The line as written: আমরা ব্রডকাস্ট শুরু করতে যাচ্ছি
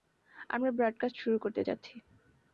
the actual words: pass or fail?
pass